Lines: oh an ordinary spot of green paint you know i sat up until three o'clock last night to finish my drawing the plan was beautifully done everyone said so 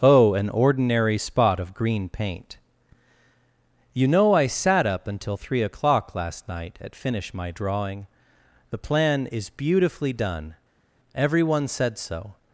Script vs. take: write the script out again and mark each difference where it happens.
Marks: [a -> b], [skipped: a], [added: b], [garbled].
oh an ordinary spot of green paint you know i sat up until three o'clock last night [to -> at] finish my drawing the plan [was -> is] beautifully done everyone said so